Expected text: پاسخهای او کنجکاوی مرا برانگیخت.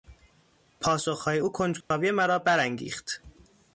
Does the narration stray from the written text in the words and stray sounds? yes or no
yes